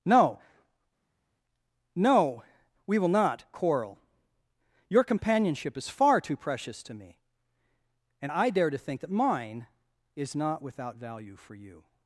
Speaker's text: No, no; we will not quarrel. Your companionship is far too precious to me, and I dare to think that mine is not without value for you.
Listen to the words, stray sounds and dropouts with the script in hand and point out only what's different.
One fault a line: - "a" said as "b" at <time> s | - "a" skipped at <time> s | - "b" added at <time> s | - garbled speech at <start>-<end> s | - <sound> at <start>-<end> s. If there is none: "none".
none